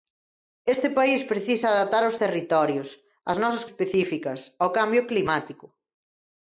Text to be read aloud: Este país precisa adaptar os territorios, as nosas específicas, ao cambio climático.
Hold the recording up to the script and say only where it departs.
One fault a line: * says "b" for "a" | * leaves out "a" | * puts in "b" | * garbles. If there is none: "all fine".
all fine